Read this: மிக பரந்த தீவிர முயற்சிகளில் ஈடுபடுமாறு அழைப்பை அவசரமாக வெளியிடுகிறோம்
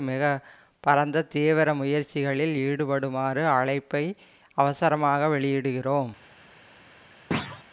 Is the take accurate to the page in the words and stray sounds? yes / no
no